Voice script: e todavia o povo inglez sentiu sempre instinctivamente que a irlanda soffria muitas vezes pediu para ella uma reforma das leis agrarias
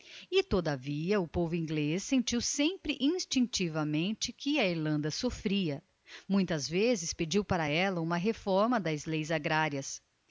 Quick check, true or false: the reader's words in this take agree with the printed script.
true